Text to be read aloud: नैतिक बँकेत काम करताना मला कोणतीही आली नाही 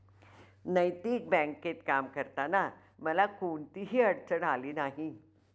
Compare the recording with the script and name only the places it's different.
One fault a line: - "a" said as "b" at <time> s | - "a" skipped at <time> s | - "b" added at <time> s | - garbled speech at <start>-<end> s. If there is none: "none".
- "अडचण" added at 4.0 s